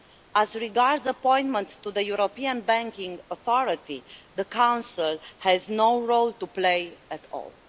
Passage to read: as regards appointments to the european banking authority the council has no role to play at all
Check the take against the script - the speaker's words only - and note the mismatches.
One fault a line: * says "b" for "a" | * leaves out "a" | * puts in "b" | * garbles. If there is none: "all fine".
all fine